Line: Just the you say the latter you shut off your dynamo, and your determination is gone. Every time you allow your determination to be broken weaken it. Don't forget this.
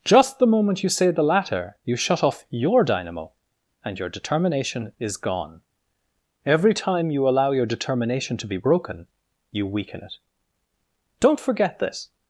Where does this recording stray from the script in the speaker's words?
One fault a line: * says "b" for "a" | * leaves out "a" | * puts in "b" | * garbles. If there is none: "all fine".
* puts in "moment"
* puts in "you"